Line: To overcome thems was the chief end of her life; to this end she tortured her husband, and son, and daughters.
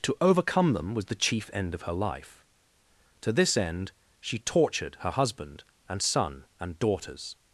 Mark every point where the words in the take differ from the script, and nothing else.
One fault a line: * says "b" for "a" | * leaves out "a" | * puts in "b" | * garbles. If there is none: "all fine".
* says "them" for "thems"